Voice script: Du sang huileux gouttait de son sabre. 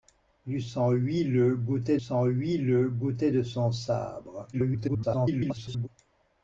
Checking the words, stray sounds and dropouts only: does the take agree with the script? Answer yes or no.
no